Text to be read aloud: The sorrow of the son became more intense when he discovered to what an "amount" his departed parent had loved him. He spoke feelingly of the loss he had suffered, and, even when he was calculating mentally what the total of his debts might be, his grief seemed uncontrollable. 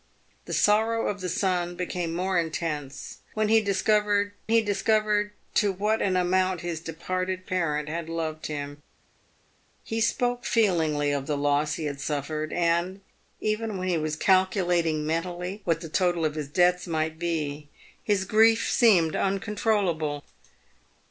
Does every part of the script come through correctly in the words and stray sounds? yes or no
no